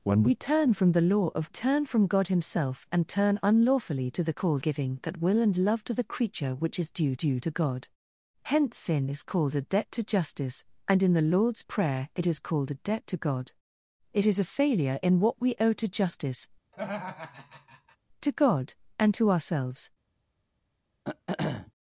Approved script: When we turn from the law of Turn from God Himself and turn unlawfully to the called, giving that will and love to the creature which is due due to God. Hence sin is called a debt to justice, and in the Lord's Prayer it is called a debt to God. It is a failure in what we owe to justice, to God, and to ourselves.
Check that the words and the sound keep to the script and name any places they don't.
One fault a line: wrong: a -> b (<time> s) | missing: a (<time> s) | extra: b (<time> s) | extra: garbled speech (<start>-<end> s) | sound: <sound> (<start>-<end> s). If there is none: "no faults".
sound: laugh (16.7-18.0 s)
sound: throat clearing (21.0-21.7 s)